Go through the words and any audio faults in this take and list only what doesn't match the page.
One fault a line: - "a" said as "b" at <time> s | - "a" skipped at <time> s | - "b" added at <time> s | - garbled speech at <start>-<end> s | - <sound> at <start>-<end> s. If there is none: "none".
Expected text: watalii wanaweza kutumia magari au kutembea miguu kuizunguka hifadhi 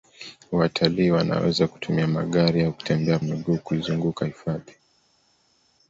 none